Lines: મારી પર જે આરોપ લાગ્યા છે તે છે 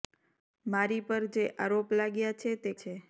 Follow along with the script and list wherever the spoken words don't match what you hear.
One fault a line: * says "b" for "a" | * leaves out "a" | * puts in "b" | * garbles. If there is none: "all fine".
all fine